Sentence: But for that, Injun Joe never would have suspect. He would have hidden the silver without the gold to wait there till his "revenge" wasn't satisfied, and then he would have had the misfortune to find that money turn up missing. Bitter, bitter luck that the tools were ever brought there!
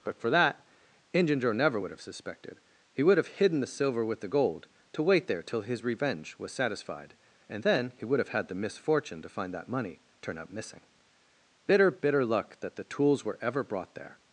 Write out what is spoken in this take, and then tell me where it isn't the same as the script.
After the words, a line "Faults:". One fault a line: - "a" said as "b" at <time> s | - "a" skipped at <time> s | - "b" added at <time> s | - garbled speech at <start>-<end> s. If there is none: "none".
But for that, Injun Joe never would have suspected. He would have hidden the silver with the gold to wait there till his "revenge" was satisfied, and then he would have had the misfortune to find that money turn up missing. Bitter, bitter luck that the tools were ever brought there!
Faults:
- "suspect" said as "suspected" at 2.0 s
- "without" said as "with" at 4.0 s
- "wasn't" said as "was" at 6.4 s